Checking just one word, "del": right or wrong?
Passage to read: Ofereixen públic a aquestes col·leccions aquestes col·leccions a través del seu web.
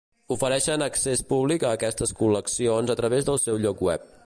right